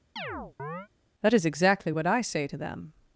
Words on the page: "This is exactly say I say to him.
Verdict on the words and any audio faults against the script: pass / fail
fail